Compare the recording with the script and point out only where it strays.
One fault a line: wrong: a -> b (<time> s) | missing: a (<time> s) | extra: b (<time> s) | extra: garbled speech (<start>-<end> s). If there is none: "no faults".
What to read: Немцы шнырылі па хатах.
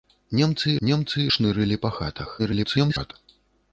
extra: немцы (0.9 s)
extra: garbled speech (2.4-3.1 s)